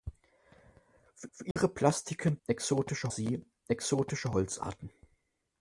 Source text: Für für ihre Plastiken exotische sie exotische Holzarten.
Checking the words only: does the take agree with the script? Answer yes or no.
yes